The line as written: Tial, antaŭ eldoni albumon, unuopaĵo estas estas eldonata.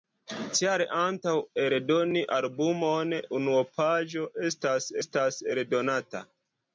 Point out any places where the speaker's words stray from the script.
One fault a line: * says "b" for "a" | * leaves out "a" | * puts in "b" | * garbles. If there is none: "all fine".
all fine